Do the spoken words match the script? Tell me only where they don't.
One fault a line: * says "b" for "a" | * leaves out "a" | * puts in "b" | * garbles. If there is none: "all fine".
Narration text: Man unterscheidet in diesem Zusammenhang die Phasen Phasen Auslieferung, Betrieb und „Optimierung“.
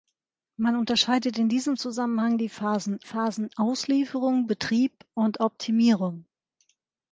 all fine